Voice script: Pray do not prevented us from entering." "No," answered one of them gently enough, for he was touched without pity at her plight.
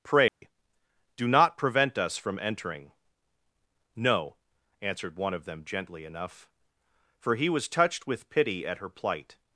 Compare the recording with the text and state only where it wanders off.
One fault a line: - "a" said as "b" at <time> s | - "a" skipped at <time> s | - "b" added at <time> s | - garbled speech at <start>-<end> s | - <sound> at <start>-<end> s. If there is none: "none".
- dropout at 0.3-0.4 s
- "prevented" said as "prevent" at 1.6 s
- "without" said as "with" at 8.1 s